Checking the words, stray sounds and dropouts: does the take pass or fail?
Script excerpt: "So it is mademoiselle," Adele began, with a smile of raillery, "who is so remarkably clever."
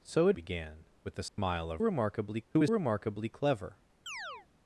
fail